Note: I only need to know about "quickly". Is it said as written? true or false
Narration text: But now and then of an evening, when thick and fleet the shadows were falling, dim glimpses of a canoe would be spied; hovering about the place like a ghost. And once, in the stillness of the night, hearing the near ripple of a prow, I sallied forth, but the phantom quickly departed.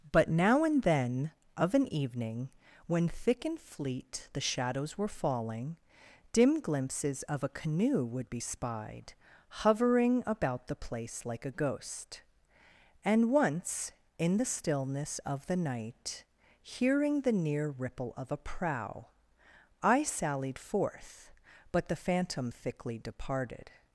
false